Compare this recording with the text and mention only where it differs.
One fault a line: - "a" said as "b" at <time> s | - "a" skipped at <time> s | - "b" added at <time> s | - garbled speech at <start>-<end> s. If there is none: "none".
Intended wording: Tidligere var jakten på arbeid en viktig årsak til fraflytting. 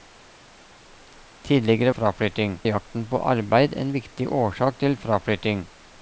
- "var" said as "fraflytting" at 2.0 s